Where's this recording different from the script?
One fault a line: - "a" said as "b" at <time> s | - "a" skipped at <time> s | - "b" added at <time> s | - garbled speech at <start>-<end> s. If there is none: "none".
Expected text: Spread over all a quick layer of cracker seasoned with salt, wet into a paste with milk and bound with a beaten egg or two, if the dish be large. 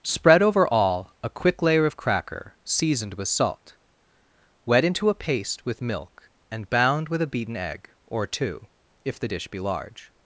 none